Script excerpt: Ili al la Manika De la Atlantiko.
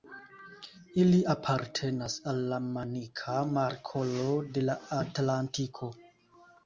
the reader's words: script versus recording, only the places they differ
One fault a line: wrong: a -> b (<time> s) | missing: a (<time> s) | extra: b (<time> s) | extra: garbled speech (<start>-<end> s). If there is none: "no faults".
extra: apartenas (1.3 s)
extra: Markolo (3.6 s)